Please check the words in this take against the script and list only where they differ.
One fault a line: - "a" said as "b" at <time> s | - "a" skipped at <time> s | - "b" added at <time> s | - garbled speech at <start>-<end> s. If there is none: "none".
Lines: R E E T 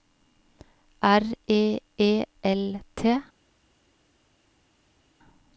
- "L" added at 2.4 s